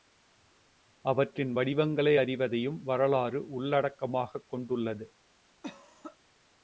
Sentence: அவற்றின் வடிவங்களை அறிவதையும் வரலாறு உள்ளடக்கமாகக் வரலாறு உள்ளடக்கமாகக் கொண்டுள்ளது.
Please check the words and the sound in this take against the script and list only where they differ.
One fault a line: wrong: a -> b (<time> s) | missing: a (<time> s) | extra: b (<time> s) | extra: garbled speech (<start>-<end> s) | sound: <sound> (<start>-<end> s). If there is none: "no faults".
missing: வரலாறு உள்ளடக்கமாகக் (4.5 s)
sound: cough (5.6-6.2 s)